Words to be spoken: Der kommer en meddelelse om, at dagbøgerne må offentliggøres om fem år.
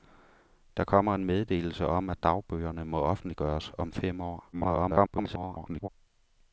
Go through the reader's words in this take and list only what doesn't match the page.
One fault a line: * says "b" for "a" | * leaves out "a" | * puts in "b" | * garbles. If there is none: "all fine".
* garbles